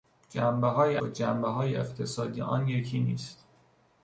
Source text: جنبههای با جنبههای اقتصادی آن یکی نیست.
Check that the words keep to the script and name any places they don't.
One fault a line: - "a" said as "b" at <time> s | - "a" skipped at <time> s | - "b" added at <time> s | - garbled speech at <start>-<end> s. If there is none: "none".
none